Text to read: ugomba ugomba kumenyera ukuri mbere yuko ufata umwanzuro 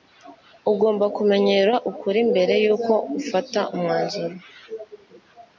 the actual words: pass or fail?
fail